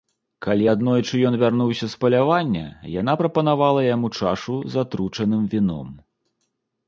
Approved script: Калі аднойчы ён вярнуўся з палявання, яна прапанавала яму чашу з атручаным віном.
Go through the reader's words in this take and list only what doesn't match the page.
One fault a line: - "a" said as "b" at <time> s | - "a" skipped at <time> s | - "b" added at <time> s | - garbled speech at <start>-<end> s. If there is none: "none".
none